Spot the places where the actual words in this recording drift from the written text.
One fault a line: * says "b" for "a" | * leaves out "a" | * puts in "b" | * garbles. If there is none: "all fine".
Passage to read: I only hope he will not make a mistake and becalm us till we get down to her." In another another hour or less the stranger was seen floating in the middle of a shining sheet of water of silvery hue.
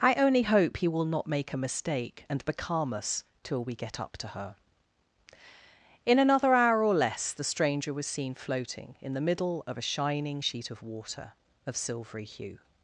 * says "up" for "down"
* leaves out "another"